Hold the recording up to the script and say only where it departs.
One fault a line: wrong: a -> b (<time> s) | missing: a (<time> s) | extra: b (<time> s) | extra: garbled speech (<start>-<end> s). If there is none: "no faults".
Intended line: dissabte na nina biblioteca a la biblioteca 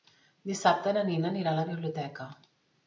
wrong: biblioteca -> anirà (1.3 s)